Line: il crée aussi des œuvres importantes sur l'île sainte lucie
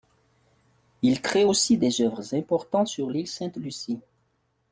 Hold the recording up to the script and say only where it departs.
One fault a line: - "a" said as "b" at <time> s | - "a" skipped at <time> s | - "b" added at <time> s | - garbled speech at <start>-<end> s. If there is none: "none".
none